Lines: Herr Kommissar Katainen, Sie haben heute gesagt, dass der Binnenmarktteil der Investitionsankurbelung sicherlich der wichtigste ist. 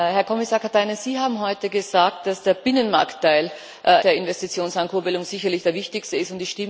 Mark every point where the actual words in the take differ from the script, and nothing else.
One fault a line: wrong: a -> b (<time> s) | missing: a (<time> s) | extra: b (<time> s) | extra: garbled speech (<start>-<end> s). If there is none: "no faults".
no faults